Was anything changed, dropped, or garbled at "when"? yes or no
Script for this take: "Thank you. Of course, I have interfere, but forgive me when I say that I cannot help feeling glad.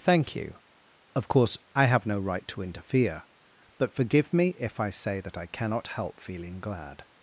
yes